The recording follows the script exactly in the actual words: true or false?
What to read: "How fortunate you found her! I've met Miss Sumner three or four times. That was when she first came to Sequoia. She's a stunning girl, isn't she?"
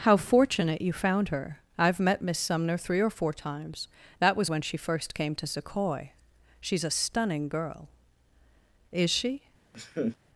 false